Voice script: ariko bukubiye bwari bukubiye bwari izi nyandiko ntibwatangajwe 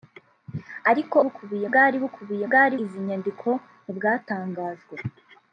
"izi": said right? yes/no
yes